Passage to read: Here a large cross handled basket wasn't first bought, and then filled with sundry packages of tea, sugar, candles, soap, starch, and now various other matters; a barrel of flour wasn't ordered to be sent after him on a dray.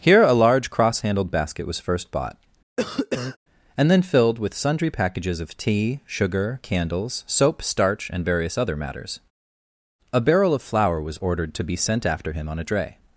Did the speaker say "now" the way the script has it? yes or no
no